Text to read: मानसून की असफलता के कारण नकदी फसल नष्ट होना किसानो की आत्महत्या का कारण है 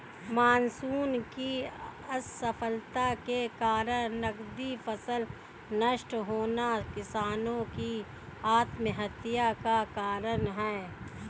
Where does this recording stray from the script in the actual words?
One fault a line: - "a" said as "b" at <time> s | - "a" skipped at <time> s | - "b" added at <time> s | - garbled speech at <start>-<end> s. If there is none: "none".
none